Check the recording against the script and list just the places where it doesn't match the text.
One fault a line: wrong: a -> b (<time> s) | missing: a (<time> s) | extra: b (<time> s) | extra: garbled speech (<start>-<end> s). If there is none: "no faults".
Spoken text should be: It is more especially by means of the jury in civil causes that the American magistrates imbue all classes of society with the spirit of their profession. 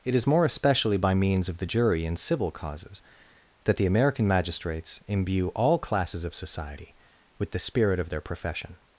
no faults